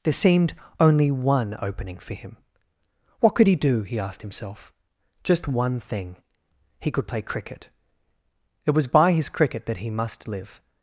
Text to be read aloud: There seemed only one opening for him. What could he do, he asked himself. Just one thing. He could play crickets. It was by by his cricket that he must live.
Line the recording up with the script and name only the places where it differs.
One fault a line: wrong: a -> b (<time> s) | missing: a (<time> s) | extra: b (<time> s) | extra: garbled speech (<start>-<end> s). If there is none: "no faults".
wrong: crickets -> cricket (7.2 s)
missing: by (9.1 s)